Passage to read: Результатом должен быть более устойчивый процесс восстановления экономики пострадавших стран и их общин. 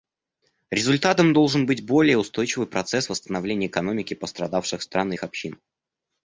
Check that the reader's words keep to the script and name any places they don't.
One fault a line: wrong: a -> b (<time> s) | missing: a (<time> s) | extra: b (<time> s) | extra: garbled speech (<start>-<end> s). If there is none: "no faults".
no faults